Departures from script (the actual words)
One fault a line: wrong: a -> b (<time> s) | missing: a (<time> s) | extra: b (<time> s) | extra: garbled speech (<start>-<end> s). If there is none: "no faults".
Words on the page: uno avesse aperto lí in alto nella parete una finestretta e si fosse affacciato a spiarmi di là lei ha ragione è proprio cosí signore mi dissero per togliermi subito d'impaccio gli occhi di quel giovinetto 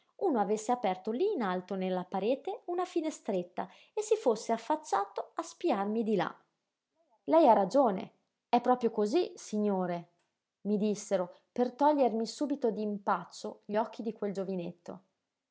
no faults